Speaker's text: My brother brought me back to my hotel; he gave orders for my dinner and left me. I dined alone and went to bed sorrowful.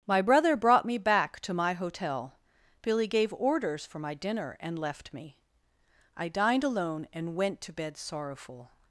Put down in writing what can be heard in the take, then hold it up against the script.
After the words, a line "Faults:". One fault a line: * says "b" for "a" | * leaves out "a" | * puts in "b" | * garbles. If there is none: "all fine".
My brother brought me back to my hotel; billy gave orders for my dinner and left me. I dined alone and went to bed sorrowful.
Faults:
* says "billy" for "he"